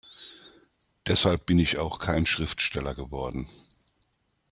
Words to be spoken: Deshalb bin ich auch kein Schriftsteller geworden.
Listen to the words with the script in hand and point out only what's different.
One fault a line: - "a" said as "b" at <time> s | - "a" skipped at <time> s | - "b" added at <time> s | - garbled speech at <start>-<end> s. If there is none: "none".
none